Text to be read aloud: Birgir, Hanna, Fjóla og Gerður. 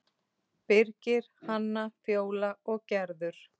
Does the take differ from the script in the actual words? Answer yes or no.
no